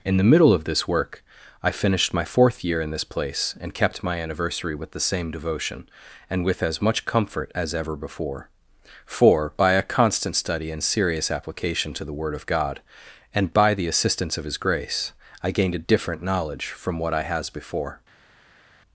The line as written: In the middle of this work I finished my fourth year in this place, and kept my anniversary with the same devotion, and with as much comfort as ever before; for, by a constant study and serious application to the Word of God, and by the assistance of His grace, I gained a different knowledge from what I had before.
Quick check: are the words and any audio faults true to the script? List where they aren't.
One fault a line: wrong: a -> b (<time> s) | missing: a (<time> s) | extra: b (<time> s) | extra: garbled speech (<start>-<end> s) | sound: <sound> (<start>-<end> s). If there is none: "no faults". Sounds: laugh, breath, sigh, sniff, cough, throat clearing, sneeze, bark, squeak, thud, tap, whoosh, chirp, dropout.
wrong: had -> has (17.2 s)